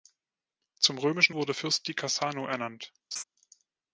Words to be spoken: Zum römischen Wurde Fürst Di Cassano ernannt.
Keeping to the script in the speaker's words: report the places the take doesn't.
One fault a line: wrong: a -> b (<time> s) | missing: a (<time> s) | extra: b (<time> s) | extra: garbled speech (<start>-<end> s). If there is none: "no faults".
no faults